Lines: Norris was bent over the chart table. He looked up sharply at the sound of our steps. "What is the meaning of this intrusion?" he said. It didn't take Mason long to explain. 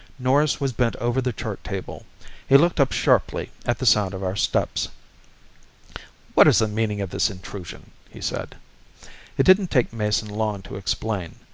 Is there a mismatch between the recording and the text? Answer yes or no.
no